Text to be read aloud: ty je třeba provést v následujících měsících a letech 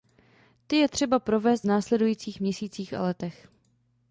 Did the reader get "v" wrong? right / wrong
wrong